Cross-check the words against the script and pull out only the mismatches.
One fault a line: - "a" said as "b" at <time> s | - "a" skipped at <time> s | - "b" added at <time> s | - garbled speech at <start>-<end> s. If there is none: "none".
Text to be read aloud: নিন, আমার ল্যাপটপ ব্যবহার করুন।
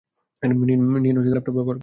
- "আমার" skipped at 0.8 s